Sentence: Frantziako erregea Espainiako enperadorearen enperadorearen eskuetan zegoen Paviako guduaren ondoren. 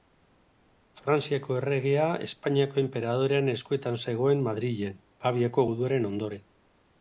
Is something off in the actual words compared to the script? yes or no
yes